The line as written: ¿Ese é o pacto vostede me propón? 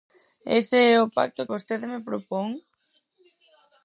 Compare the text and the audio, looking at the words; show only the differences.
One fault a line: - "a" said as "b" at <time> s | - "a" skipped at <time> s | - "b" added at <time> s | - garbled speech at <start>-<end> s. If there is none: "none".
none